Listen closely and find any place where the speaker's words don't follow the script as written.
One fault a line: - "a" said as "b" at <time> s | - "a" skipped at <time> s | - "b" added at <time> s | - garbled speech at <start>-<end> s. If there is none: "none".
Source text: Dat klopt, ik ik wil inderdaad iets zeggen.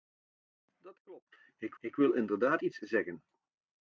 none